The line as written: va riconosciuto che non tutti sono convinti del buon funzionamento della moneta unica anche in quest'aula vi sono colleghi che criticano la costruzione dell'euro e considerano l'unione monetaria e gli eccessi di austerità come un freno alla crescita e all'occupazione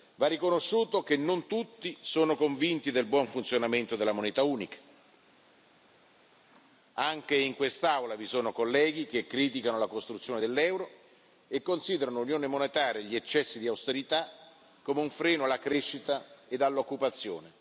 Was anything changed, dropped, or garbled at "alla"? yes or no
no